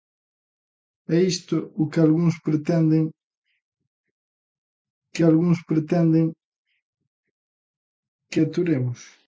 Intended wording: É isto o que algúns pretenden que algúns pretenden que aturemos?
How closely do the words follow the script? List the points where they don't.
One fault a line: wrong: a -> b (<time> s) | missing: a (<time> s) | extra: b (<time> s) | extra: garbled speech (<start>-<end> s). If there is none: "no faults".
no faults